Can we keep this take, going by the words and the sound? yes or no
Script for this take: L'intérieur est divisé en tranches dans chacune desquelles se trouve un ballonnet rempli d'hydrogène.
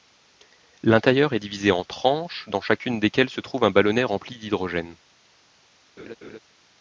no